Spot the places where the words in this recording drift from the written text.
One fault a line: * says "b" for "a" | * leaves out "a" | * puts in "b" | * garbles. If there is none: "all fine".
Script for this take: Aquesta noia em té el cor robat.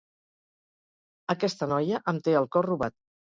all fine